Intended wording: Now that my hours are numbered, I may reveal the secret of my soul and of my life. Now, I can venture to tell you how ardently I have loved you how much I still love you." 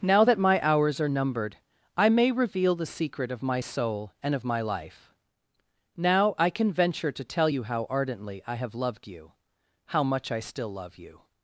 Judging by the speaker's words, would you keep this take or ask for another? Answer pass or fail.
pass